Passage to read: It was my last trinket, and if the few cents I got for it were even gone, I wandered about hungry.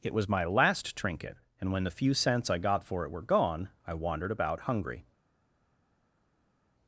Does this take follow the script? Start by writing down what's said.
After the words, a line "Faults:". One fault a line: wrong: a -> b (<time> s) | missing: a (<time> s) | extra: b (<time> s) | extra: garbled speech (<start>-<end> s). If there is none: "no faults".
It was my last trinket, and when the few cents I got for it were gone, I wandered about hungry.
Faults:
wrong: if -> when (1.7 s)
missing: even (3.2 s)